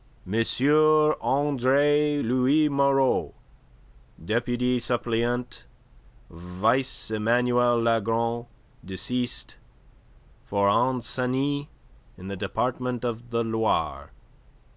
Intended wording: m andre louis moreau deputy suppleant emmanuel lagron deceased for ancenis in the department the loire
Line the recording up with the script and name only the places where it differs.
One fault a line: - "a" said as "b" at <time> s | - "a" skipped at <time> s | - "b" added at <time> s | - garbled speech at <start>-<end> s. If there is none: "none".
- "vice" added at 6.3 s
- "of" added at 13.0 s